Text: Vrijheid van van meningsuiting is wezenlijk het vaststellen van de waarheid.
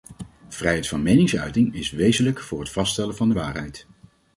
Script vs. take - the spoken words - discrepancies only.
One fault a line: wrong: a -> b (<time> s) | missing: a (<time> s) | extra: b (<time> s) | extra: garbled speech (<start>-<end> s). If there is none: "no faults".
missing: van (1.0 s)
extra: voor (2.4 s)